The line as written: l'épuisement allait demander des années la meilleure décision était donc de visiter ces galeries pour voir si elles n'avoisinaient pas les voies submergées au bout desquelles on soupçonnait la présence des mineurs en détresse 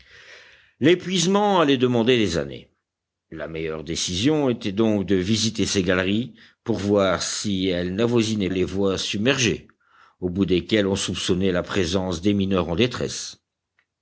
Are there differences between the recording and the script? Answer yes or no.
yes